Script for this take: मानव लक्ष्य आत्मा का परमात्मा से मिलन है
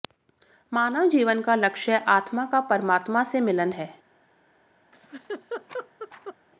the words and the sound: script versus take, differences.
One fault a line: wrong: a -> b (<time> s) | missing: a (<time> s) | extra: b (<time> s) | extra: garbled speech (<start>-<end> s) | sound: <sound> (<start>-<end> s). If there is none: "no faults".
extra: जीवन का (1.1 s)
sound: laugh (4.9-6.4 s)